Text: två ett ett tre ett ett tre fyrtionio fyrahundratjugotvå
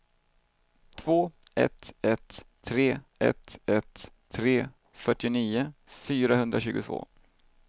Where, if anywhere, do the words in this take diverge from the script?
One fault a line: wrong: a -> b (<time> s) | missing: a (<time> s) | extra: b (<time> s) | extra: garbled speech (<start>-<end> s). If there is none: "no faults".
no faults